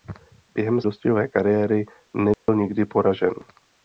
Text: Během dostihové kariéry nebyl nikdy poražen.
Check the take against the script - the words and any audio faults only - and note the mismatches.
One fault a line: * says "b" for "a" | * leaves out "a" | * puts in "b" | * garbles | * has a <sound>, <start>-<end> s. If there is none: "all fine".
* has a dropout, 2.3-2.5 s